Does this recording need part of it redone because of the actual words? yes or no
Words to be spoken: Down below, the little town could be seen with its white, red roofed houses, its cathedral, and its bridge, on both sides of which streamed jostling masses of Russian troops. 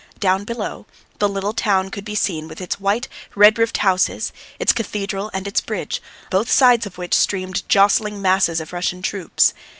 yes